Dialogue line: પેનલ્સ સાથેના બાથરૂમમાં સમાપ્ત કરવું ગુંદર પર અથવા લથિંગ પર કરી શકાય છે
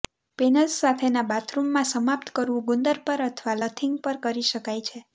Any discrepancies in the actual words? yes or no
no